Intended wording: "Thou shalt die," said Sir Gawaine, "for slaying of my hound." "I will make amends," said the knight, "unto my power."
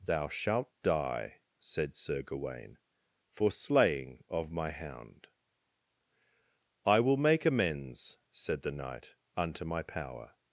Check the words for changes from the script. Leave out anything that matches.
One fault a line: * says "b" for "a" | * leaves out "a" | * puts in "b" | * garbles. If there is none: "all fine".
all fine